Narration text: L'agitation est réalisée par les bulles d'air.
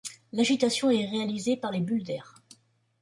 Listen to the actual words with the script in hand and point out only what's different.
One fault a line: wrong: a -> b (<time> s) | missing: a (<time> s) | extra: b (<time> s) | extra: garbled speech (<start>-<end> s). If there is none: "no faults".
no faults